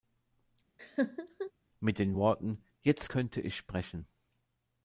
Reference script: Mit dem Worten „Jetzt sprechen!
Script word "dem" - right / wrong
wrong